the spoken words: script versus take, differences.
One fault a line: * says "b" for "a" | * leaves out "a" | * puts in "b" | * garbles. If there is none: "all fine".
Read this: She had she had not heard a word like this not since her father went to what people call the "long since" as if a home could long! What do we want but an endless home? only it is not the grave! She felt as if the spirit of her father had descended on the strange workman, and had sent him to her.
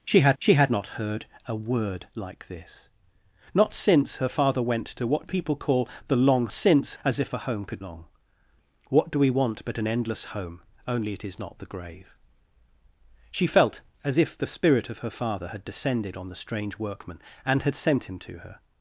all fine